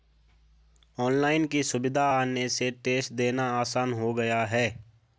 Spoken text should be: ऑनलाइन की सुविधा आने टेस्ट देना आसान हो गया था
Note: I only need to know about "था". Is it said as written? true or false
false